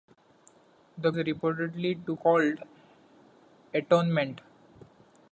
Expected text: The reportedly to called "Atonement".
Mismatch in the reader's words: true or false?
false